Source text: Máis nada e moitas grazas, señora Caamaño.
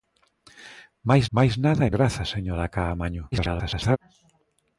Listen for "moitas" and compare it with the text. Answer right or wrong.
wrong